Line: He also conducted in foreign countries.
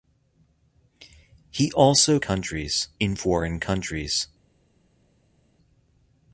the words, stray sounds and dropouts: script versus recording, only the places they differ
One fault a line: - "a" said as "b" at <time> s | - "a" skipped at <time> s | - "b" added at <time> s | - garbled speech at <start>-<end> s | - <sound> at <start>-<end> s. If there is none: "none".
- "conducted" said as "countries" at 2.2 s